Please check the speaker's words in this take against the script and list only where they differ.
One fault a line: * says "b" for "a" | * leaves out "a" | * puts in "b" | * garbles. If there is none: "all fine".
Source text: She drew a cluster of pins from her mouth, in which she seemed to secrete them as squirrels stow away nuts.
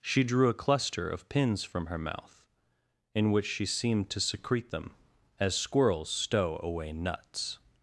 all fine